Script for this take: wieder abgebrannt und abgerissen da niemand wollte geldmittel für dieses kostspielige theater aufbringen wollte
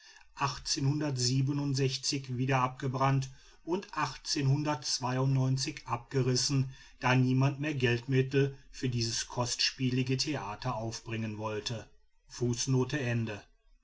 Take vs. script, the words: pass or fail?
fail